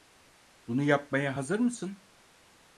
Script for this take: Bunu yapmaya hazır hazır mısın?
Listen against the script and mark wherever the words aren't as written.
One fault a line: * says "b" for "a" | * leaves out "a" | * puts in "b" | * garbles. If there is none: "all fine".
* leaves out "hazır"